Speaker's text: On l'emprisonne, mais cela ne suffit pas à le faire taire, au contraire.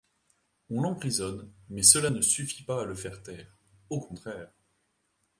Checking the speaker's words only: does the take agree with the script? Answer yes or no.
yes